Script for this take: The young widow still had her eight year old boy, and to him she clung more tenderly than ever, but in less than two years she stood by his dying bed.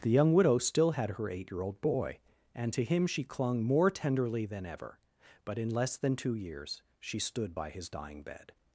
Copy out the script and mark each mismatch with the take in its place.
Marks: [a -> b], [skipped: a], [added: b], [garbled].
The young widow still had her eight year old boy, and to him she clung more tenderly than ever, but in less than two years she stood by his dying bed.